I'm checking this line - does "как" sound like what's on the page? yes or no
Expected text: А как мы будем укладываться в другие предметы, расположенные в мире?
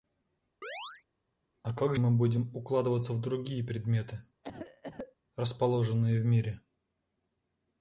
yes